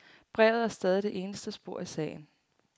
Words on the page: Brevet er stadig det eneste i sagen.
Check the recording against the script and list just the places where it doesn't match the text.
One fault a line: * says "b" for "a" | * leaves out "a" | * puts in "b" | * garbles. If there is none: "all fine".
* puts in "spor"